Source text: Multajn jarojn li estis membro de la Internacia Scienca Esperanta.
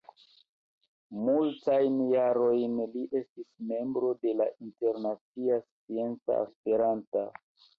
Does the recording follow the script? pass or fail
pass